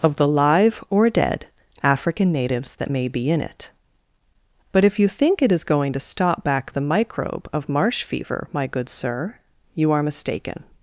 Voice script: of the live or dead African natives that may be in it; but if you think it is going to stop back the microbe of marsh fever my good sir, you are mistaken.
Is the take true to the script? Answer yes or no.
yes